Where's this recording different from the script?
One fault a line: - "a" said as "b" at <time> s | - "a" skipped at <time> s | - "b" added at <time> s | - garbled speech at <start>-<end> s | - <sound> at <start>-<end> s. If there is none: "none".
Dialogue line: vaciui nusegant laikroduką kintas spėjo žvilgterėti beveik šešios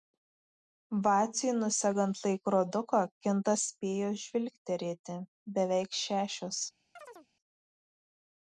- chirp at 7.0-7.3 s